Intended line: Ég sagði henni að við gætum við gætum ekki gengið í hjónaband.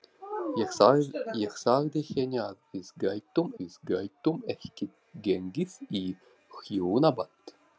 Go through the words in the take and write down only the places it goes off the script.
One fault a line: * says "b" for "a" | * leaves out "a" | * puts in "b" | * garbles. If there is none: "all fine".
all fine